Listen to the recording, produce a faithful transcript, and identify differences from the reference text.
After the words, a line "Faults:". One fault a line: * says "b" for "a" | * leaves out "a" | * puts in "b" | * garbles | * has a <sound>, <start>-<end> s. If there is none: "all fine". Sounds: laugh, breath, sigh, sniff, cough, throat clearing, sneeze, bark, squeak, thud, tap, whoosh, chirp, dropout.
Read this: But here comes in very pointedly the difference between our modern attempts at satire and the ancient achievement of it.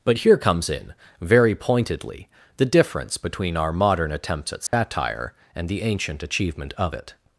But here comes in very pointedly the difference between our modern attempts at satire and the ancient achievement of it.
Faults:
* has a dropout, 4.7-4.7 s